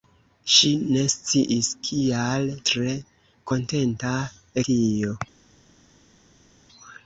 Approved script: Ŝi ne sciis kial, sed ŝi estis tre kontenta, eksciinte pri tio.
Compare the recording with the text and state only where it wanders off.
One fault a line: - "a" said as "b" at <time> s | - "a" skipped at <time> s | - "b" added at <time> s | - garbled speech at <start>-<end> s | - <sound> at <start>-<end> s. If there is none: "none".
- "sed ŝi estis" skipped at 2.5 s
- "eksciinte pri" skipped at 4.2 s